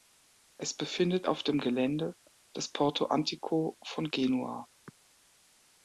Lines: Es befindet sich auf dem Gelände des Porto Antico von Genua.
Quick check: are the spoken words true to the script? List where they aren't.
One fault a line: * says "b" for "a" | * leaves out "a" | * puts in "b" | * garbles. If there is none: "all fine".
* leaves out "sich"